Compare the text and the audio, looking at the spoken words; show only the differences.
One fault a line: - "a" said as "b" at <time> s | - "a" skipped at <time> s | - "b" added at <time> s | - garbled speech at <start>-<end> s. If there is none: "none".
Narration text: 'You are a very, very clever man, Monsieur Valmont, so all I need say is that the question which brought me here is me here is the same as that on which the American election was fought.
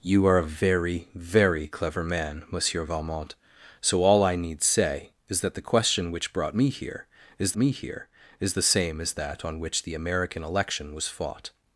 none